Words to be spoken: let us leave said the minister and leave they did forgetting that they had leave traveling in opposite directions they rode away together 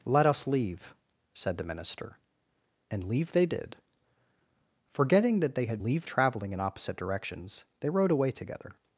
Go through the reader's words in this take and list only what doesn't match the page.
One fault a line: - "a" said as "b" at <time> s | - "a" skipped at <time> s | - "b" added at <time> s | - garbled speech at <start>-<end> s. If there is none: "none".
none